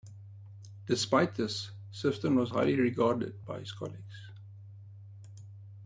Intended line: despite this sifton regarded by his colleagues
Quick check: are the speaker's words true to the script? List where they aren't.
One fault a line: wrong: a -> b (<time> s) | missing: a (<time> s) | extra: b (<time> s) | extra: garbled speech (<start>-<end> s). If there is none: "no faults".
extra: was highly (2.4 s)